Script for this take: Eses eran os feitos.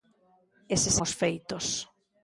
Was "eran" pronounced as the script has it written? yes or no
no